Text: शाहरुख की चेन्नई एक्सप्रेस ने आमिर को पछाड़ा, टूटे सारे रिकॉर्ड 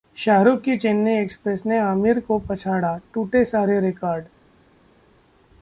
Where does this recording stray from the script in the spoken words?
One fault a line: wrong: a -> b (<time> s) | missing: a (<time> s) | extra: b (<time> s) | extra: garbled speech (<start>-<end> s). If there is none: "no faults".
no faults